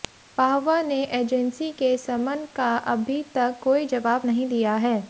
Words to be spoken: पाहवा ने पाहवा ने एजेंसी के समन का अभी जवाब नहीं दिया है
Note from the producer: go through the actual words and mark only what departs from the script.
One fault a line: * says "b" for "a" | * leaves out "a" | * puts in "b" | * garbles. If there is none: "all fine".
* leaves out "पाहवा ने"
* puts in "तक कोई"